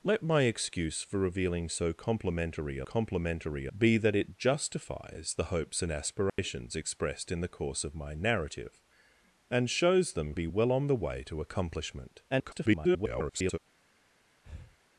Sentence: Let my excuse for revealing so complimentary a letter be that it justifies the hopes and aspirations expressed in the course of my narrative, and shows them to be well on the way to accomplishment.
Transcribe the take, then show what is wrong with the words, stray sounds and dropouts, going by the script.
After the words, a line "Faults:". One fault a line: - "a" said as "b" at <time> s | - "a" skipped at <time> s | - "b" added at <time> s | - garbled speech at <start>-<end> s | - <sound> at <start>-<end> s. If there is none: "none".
Let my excuse for revealing so complimentary a complimentary be that it justifies the hopes and aspirations expressed in the course of my narrative, and shows them be well on the way to accomplishment. [garbled]
Faults:
- "letter" said as "complimentary" at 2.8 s
- dropout at 6.3-6.4 s
- "to" skipped at 10.3 s
- garbled speech at 12.3-13.6 s
- breath at 14.4-14.8 s